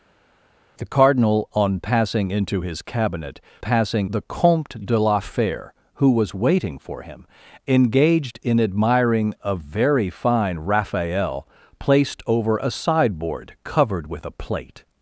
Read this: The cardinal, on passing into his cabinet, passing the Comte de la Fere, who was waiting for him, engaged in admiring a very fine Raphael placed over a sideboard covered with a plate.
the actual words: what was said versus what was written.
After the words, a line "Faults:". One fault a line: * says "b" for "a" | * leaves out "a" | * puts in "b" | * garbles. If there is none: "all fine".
The cardinal, on passing into his cabinet, passing the Comte de la Fere, who was waiting for him, engaged in admiring a very fine Raphael placed over a sideboard covered with a plate.
Faults:
all fine